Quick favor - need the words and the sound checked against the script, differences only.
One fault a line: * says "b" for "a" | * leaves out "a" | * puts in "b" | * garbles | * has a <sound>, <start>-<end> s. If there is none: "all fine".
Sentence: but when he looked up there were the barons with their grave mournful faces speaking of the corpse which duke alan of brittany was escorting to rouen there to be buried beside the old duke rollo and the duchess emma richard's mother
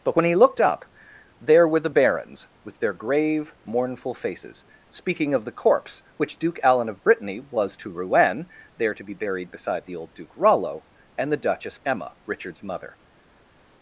* leaves out "escorting"